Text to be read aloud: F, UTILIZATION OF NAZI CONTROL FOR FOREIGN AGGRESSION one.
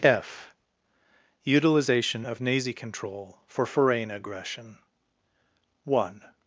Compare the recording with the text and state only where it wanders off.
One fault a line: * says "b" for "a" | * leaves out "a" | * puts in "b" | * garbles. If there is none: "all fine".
all fine